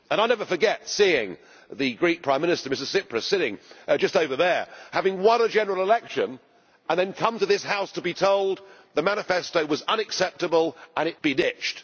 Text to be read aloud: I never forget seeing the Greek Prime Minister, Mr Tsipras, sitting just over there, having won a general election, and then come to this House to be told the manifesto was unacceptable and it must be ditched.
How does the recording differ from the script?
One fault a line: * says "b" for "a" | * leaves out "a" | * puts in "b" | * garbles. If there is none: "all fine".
* leaves out "must"